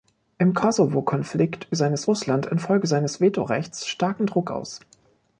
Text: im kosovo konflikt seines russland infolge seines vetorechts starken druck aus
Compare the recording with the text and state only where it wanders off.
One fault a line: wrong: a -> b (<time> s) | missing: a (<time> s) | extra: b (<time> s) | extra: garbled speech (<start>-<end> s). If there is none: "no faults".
no faults